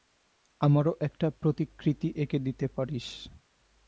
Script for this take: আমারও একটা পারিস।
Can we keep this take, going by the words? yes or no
no